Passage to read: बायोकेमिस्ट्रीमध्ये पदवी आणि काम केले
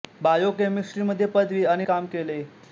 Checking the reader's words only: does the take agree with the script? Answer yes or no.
yes